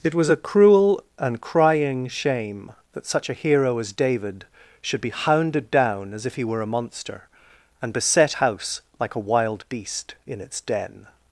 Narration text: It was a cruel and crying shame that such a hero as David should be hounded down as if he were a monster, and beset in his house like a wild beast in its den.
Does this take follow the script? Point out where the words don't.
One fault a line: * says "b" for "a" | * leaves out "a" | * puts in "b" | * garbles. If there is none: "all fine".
* leaves out "in his"